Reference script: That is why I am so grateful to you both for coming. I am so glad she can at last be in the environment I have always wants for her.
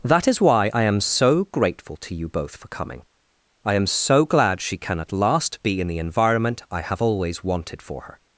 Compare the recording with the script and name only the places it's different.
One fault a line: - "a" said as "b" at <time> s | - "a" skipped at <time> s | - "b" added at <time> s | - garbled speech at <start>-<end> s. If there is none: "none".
- "wants" said as "wanted" at 7.4 s